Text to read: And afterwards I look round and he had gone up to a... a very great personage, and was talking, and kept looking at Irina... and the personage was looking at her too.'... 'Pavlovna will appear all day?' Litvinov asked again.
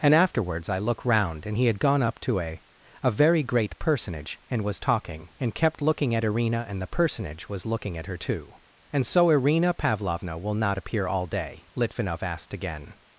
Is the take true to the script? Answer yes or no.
no